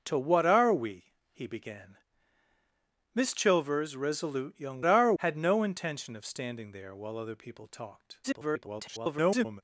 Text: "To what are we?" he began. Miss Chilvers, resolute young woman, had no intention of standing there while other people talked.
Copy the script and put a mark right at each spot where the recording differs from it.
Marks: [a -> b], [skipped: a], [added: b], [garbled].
"To what are we?" he began. Miss Chilvers, resolute young [woman, -> are] had no intention of standing there while other people talked. [garbled]